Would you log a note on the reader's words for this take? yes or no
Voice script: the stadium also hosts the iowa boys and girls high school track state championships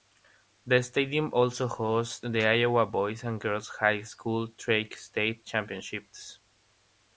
no